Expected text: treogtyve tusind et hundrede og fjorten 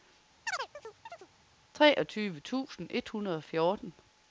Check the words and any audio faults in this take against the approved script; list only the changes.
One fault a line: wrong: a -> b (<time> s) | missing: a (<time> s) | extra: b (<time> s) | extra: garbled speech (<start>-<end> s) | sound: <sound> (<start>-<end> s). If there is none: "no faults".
sound: chirp (0.5-1.3 s)